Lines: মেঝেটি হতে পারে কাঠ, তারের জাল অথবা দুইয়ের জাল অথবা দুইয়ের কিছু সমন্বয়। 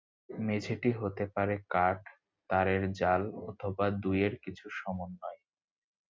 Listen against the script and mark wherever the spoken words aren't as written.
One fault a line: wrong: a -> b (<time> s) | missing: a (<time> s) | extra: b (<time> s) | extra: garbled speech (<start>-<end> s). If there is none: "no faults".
missing: জাল অথবা দুইয়ের (4.3 s)